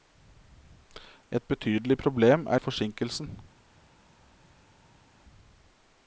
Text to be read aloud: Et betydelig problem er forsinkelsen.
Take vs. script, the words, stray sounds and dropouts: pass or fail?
pass